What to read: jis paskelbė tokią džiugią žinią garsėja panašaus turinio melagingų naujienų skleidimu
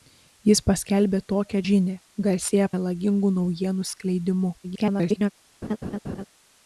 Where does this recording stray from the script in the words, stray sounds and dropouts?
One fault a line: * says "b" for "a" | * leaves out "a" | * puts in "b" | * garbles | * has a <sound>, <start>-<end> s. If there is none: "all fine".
* leaves out "džiugią"
* leaves out "panašaus turinio"
* garbles
* has a laugh, 5.6-6.2 s